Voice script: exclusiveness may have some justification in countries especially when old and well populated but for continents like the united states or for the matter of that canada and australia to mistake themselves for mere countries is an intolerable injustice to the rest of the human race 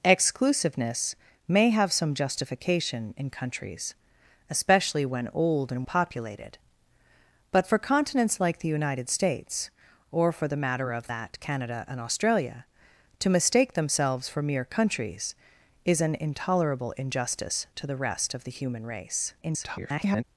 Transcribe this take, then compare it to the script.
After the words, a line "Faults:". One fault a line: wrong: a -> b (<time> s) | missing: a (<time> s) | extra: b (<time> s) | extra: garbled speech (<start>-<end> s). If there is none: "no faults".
exclusiveness may have some justification in countries especially when old and populated but for continents like the united states or for the matter of that canada and australia to mistake themselves for mere countries is an intolerable injustice to the rest of the human race [garbled]
Faults:
missing: well (5.8 s)
extra: garbled speech (19.4-20.2 s)